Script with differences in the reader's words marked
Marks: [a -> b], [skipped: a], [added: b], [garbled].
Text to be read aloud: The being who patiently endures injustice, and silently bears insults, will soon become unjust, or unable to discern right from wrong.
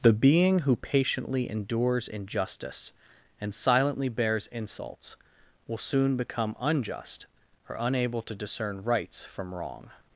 The being who patiently endures injustice, and silently bears insults, will soon become unjust, or unable to discern [right -> rights] from wrong.